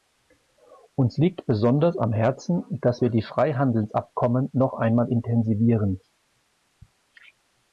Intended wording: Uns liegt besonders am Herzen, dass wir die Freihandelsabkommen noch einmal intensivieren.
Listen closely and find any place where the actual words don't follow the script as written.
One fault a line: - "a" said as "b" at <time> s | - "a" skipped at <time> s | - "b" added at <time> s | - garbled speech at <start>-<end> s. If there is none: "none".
none